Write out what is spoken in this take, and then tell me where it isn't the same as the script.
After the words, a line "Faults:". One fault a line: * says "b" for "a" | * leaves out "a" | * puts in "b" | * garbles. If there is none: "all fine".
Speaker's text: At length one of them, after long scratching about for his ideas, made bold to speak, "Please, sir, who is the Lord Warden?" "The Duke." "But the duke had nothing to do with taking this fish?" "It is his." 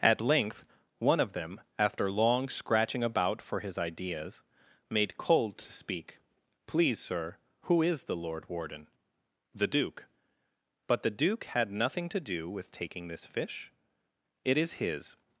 At length one of them, after long scratching about for his ideas, made cold to speak, "Please, sir, who is the Lord Warden?" "The Duke." "But the duke had nothing to do with taking this fish?" "It is his."
Faults:
* says "cold" for "bold"